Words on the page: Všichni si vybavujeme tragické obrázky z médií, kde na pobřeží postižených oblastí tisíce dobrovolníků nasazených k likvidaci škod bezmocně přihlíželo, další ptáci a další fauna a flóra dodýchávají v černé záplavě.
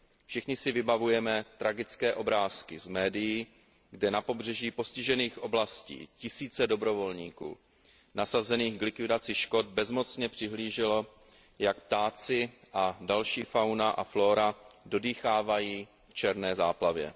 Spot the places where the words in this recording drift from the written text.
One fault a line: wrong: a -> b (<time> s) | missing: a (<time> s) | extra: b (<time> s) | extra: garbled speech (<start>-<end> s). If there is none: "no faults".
wrong: další -> jak (11.6 s)